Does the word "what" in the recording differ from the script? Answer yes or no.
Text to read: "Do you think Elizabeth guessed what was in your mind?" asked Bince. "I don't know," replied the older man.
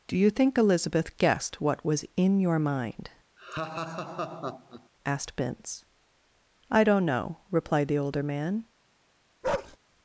no